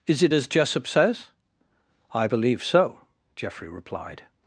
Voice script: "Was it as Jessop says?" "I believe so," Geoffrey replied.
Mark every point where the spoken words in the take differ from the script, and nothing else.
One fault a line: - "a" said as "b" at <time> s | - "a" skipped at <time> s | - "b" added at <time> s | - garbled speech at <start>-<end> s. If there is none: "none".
- "Was" said as "Is" at 0.1 s